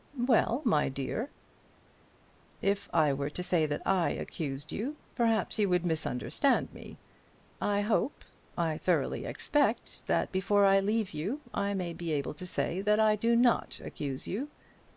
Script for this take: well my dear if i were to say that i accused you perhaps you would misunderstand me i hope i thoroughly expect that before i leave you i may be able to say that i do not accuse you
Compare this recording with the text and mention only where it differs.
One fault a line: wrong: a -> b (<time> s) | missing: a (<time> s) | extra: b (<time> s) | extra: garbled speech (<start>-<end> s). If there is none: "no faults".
no faults